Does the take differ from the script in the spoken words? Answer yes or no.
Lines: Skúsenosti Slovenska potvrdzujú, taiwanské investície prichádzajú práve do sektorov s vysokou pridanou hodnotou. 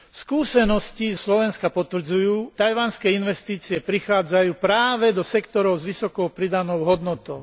no